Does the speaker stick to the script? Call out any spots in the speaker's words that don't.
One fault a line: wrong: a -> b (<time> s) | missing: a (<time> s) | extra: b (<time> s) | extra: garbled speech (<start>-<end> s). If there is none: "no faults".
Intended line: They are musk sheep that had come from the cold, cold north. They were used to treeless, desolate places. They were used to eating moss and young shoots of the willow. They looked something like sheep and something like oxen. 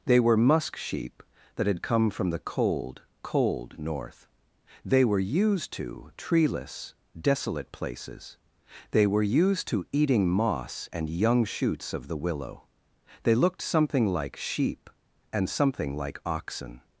wrong: are -> were (0.2 s)